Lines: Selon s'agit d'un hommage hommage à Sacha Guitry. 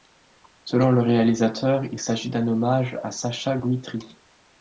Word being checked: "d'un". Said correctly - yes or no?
yes